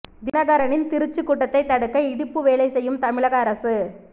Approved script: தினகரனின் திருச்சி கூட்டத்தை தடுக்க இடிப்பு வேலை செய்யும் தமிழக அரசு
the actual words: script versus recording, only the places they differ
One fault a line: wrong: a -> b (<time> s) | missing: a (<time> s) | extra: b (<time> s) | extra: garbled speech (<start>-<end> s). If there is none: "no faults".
no faults